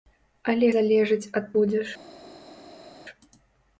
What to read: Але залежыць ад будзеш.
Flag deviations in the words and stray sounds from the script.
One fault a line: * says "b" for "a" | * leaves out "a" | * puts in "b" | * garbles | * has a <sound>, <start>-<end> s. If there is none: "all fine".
all fine